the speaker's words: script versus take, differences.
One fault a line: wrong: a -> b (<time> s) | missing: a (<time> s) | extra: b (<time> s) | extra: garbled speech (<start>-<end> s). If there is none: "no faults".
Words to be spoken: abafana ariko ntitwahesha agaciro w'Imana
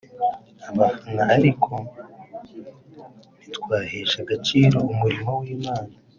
extra: umurimo (4.9 s)